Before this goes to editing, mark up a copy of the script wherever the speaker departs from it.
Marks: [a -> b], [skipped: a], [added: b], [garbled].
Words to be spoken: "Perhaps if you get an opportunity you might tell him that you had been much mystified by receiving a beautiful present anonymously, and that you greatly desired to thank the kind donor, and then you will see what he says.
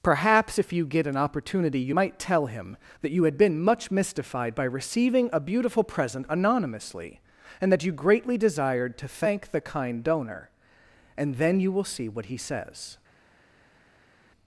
"Perhaps if you get an opportunity you might tell him that you had been much mystified by receiving a beautiful present anonymously, and that you greatly desired to thank the kind donor, and then you will see what he says.